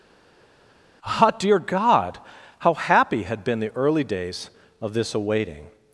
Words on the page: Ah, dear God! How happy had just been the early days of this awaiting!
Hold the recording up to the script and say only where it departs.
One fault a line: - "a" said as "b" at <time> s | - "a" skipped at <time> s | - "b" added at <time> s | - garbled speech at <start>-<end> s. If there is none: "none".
- "just" skipped at 3.4 s